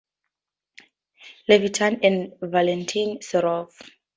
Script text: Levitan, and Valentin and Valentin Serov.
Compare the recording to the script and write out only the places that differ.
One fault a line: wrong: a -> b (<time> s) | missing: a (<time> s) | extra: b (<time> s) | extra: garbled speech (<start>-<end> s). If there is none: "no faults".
missing: and Valentin (3.2 s)